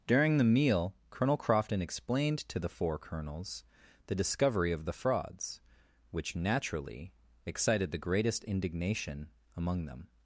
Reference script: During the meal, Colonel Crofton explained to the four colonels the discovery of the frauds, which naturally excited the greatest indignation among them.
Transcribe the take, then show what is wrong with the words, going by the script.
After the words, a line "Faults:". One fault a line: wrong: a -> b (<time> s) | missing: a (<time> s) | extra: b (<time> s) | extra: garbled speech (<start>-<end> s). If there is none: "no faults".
During the meal, Colonel Crofton explained to the four colonels the discovery of the frauds, which naturally excited the greatest indignation among them.
Faults:
no faults